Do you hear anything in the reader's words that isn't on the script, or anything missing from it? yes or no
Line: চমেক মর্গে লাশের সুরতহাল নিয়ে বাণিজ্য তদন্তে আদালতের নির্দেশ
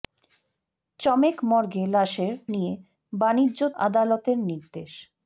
yes